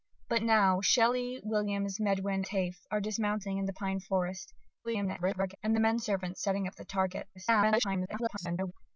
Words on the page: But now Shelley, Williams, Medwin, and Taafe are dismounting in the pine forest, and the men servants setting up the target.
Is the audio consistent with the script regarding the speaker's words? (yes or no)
no